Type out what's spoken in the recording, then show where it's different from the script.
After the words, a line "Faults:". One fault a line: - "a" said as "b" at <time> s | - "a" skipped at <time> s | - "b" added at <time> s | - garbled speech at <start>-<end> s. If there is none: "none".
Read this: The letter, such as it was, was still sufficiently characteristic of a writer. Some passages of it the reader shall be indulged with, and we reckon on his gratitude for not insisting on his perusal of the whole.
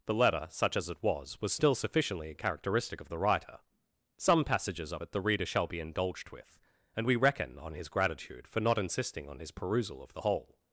The letter, such as it was, was still sufficiently characteristic of the writer. Some passages of it the reader shall be indulged with, and we reckon on his gratitude for not insisting on his perusal of the whole.
Faults:
- "a" said as "the" at 3.1 s